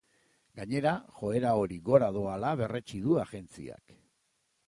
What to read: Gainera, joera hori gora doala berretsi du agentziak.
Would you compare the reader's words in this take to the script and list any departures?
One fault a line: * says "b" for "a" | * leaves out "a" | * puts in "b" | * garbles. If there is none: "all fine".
all fine